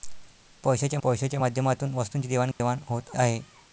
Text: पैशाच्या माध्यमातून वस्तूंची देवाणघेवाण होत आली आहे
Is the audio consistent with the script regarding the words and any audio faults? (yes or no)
no